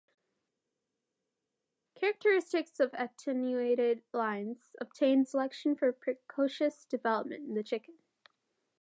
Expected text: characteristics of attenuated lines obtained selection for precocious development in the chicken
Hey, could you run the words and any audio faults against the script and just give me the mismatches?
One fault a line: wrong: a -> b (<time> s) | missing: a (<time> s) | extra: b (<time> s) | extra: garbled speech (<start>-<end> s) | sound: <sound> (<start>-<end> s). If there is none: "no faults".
no faults